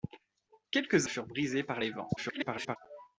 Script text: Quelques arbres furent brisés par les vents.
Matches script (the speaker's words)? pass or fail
fail